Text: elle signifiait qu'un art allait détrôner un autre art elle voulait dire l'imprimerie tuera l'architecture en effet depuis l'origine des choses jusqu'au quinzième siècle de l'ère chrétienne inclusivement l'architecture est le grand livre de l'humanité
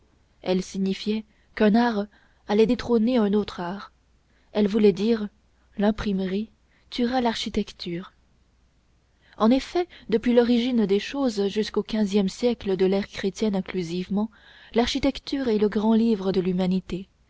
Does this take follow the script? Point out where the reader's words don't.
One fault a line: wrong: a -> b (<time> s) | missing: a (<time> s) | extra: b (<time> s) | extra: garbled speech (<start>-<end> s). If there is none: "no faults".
no faults